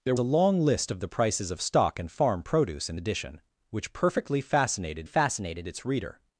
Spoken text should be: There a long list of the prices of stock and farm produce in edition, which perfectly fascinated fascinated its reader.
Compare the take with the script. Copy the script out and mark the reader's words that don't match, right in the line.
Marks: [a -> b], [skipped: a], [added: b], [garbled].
There a long list of the prices of stock and farm produce in edition, which perfectly fascinated fascinated its reader.